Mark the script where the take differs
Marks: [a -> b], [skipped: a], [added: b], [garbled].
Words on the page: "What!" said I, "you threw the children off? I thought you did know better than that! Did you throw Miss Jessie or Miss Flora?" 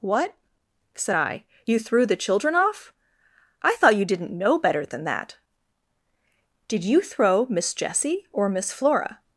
"What!" said I, "you threw the children off? I thought you [did -> didn't] know better than that! Did you throw Miss Jessie or Miss Flora?"